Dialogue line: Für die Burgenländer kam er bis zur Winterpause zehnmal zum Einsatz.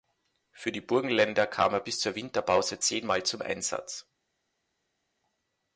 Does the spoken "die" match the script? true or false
true